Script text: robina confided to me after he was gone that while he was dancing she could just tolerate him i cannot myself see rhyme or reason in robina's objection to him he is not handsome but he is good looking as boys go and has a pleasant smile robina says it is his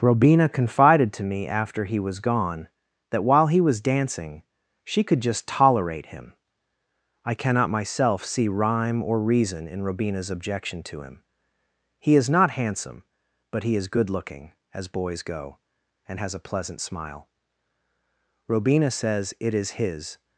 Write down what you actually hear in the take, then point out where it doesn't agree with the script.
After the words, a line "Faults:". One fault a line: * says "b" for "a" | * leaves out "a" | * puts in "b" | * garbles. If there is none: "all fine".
robina confided to me after he was gone that while he was dancing she could just tolerate him i cannot myself see rhyme or reason in robina's objection to him he is not handsome but he is good looking as boys go and has a pleasant smile robina says it is his
Faults:
all fine